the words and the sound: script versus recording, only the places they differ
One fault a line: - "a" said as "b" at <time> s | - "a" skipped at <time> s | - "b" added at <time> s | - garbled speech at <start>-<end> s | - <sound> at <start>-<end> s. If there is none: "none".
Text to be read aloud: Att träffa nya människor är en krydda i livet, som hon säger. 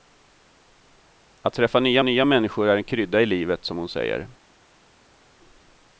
- "nya" added at 2.0 s